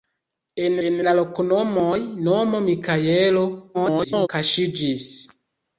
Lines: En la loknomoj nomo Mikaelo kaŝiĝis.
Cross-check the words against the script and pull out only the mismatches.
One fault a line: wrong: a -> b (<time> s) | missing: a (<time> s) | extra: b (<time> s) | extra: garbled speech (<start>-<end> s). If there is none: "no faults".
extra: en (0.9 s)
extra: garbled speech (3.7-4.3 s)